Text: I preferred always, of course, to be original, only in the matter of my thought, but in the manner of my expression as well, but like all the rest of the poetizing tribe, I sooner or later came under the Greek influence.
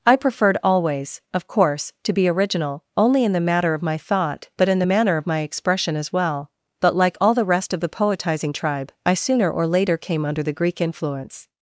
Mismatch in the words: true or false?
false